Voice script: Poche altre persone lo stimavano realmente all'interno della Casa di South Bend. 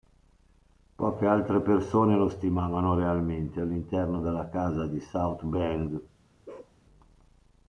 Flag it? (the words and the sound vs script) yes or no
yes